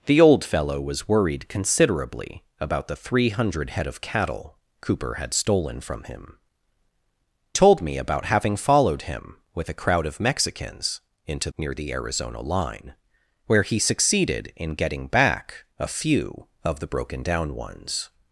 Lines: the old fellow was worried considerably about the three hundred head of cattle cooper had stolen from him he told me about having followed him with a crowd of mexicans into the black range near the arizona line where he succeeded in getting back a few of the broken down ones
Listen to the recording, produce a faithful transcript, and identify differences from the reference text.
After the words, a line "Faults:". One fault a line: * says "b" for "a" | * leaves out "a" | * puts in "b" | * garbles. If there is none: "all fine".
the old fellow was worried considerably about the three hundred head of cattle cooper had stolen from him told me about having followed him with a crowd of mexicans into near the arizona line where he succeeded in getting back a few of the broken down ones
Faults:
* leaves out "he"
* leaves out "the black range"